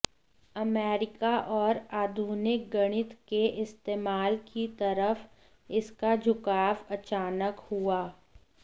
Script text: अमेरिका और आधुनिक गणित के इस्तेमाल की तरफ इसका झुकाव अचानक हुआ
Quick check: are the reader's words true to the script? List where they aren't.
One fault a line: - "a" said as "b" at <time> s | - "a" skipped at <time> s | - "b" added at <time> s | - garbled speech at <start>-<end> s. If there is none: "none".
none